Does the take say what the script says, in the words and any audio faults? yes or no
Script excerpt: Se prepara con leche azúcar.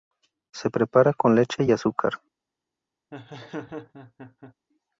no